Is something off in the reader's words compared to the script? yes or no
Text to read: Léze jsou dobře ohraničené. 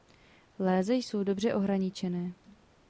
no